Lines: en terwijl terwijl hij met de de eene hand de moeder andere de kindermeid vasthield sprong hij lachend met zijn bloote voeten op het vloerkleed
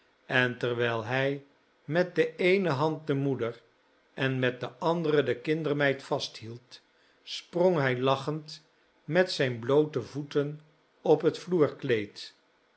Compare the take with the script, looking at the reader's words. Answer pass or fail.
fail